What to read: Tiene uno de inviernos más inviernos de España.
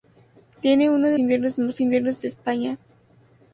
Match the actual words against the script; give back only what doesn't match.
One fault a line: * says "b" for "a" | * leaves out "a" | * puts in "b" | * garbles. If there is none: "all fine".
all fine